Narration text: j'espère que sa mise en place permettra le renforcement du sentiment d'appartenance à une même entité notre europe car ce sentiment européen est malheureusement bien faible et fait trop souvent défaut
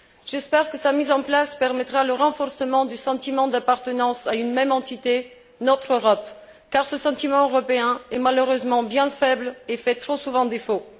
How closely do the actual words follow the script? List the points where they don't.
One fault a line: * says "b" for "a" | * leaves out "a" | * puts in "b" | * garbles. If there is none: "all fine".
all fine